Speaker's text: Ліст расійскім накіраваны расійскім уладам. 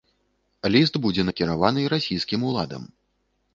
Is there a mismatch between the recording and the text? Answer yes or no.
yes